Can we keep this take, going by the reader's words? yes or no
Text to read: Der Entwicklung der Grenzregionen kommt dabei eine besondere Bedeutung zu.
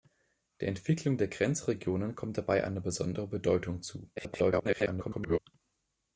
no